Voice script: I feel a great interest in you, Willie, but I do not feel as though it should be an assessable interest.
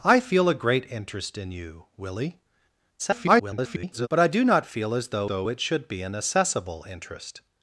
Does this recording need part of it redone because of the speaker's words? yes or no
yes